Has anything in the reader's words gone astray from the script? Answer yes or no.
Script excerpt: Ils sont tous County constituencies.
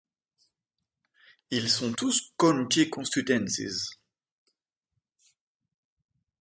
no